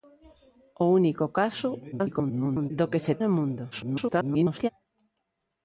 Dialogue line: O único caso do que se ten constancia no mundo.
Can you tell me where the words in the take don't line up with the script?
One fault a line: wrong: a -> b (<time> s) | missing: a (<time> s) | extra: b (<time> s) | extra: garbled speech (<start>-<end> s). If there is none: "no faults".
extra: garbled speech (1.9-2.7 s)
missing: ten constancia (3.1 s)
extra: garbled speech (3.7-4.7 s)